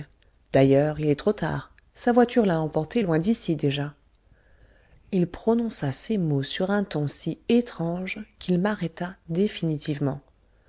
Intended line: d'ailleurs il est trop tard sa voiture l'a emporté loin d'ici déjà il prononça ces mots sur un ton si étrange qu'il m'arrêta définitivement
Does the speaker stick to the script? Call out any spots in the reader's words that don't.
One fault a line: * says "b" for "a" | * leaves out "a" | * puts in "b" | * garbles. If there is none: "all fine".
all fine